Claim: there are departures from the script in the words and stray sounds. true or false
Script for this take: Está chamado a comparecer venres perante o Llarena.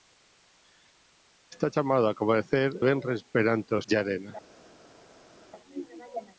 false